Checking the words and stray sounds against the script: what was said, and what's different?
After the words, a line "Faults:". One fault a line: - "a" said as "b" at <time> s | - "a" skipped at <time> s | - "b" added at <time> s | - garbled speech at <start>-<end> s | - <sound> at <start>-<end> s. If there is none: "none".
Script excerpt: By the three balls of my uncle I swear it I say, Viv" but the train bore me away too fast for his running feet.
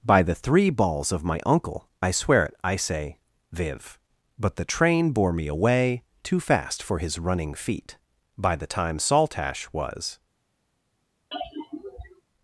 By the three balls of my uncle I swear it I say, Viv" but the train bore me away too fast for his running feet. By the time Saltash was
Faults:
- "By the time Saltash was" added at 8.4 s
- sigh at 11.3-12.2 s